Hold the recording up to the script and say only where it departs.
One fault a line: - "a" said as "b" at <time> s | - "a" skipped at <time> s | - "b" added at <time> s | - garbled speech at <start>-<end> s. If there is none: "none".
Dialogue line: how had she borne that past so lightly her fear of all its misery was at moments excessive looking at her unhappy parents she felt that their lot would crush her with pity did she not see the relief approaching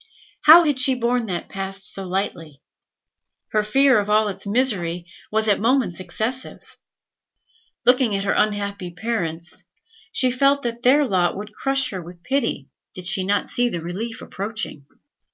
none